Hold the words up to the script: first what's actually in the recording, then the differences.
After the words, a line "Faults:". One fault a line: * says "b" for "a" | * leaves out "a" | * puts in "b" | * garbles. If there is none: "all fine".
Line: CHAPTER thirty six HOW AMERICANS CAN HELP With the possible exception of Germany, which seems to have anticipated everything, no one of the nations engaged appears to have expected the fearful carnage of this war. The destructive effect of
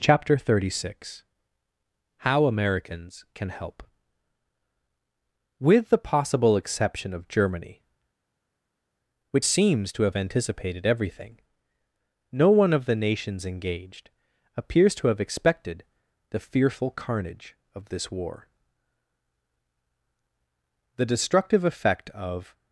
CHAPTER thirty six HOW AMERICANS CAN HELP With the possible exception of Germany, which seems to have anticipated everything, no one of the nations engaged appears to have expected the fearful carnage of this war. The destructive effect of
Faults:
all fine